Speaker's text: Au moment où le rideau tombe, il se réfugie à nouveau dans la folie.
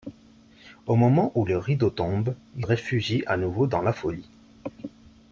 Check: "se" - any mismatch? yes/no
yes